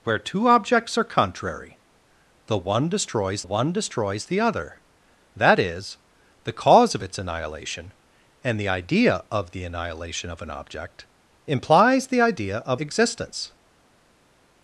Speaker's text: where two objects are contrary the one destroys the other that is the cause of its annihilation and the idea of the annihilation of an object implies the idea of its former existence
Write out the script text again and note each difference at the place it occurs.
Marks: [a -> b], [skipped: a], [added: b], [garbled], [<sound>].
where two objects are contrary the one destroys [added: one destroys] the other that is the cause of its annihilation and the idea of the annihilation of an object implies the idea of [skipped: its former] existence